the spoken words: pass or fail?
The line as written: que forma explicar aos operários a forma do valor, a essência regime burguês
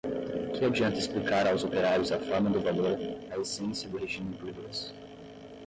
fail